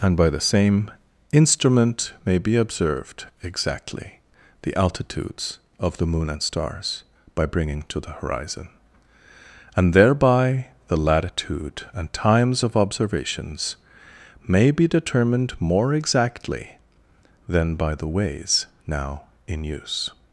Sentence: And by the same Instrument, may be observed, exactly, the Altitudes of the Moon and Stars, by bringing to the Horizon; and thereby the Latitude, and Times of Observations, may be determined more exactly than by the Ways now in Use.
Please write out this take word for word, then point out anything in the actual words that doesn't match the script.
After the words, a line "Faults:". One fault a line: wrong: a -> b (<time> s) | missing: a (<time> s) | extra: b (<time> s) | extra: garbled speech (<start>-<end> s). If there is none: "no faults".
And by the same Instrument, may be observed, exactly, the Altitudes of the Moon and Stars, by bringing to the Horizon; and thereby the Latitude, and Times of Observations, may be determined more exactly than by the Ways now in Use.
Faults:
no faults